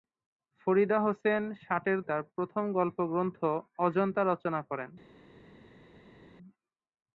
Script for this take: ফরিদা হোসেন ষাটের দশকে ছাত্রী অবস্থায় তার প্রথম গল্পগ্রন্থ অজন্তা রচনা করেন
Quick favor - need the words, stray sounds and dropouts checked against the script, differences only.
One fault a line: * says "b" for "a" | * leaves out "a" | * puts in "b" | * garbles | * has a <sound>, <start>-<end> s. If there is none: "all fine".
* leaves out "দশকে ছাত্রী অবস্থায়"